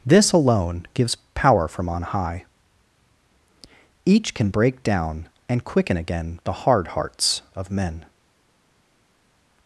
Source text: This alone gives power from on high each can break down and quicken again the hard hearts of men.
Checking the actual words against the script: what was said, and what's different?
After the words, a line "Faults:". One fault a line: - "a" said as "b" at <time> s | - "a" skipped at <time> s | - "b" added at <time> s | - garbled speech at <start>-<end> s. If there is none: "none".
This alone gives power from on high each can break down and quicken again the hard hearts of men.
Faults:
none